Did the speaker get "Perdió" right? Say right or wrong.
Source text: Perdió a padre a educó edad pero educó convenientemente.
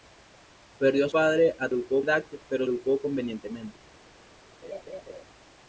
right